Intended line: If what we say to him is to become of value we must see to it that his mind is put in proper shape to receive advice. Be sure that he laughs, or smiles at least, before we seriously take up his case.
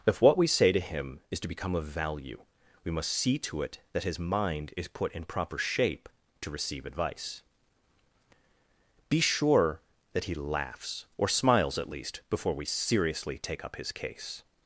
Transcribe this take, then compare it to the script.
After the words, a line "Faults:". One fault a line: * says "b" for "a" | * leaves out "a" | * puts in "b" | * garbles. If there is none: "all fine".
If what we say to him is to become of value we must see to it that his mind is put in proper shape to receive advice. Be sure that he laughs, or smiles at least, before we seriously take up his case.
Faults:
all fine